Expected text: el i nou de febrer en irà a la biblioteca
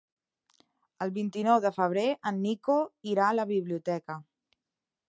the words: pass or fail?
fail